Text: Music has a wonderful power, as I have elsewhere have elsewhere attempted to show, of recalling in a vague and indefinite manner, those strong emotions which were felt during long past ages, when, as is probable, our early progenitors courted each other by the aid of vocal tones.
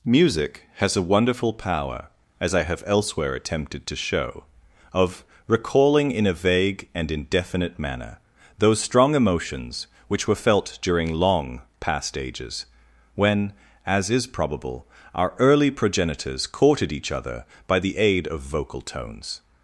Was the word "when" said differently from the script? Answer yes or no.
no